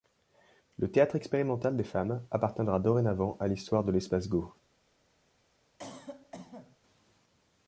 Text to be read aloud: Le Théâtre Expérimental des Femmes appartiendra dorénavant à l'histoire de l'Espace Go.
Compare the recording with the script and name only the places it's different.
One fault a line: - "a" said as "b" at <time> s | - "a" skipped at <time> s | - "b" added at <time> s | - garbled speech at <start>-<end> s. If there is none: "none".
none